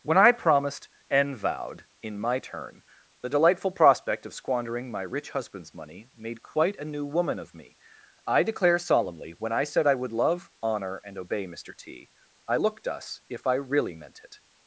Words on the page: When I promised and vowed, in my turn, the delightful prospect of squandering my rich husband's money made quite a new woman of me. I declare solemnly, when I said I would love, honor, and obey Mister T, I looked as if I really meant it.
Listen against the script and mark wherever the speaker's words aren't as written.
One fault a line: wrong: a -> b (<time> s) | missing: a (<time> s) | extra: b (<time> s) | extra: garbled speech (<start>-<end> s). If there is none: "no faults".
wrong: as -> us (12.9 s)